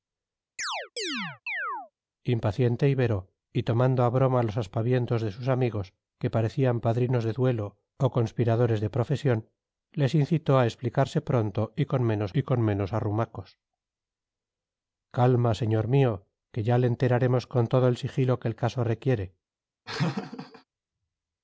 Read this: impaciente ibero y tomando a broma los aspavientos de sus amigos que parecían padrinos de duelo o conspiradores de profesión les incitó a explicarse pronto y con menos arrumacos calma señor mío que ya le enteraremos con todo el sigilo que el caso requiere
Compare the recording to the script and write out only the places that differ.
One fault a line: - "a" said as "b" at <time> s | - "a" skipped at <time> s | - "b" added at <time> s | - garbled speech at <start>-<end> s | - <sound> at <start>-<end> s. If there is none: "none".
- chirp at 0.6-1.9 s
- "y con menos" added at 12.3 s
- laugh at 19.9-20.6 s